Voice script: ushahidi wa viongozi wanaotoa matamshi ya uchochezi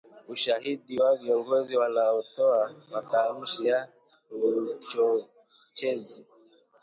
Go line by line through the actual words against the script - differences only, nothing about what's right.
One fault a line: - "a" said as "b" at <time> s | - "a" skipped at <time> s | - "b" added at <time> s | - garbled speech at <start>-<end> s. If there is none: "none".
none